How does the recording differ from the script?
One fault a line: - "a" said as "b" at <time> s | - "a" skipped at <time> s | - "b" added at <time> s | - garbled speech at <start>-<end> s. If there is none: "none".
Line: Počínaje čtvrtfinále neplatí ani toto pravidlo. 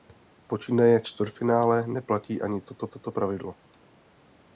- "toto" added at 2.9 s